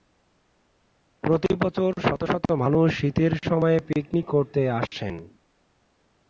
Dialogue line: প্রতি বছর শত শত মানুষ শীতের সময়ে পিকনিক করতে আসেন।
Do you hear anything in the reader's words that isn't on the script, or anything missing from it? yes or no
no